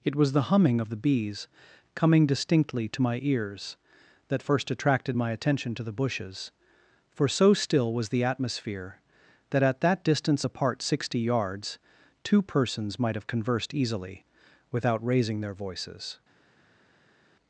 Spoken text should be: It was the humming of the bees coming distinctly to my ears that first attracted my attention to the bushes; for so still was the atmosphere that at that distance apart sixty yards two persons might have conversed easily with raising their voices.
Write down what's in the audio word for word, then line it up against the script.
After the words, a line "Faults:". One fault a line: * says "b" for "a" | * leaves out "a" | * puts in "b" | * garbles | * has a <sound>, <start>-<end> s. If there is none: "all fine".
It was the humming of the bees coming distinctly to my ears that first attracted my attention to the bushes; for so still was the atmosphere that at that distance apart sixty yards two persons might have conversed easily without raising their voices.
Faults:
* says "without" for "with"